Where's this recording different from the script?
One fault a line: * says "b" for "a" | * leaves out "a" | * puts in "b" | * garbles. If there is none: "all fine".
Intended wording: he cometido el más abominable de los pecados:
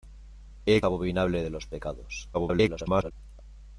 * leaves out "cometido el más"
* garbles